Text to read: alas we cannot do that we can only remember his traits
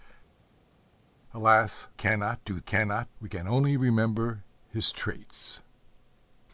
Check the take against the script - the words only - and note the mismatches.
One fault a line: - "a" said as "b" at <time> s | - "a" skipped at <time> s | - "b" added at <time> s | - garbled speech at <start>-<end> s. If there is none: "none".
- "we" skipped at 1.9 s
- "that" said as "cannot" at 2.6 s